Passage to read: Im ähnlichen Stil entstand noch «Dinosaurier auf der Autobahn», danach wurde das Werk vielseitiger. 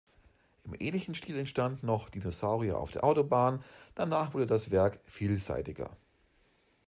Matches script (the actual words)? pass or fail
pass